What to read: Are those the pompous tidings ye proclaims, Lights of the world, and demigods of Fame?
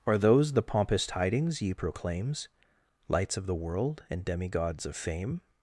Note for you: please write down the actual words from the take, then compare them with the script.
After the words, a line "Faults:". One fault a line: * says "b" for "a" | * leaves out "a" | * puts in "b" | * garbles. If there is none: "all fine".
Are those the pompous tidings ye proclaims, Lights of the world, and demigods of Fame?
Faults:
all fine